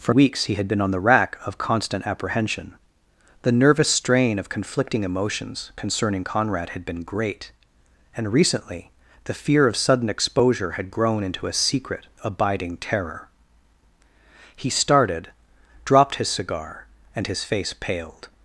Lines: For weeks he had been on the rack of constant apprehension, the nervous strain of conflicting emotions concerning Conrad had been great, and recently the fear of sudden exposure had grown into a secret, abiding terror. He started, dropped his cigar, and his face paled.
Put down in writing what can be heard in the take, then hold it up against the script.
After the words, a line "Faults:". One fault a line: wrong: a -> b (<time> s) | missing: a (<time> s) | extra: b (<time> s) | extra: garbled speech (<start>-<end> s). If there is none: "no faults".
For weeks he had been on the rack of constant apprehension, the nervous strain of conflicting emotions concerning Conrad had been great, and recently the fear of sudden exposure had grown into a secret, abiding terror. He started, dropped his cigar, and his face paled.
Faults:
no faults